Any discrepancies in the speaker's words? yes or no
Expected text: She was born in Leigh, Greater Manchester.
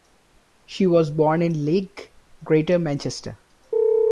no